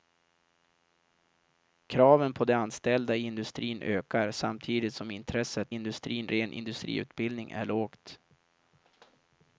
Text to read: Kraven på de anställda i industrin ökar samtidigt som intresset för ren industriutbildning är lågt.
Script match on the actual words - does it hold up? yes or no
no